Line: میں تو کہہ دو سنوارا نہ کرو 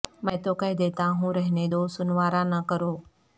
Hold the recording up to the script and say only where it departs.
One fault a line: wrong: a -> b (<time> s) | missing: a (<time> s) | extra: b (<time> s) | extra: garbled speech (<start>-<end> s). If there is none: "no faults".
extra: دیتا ہوں رہنے (0.8 s)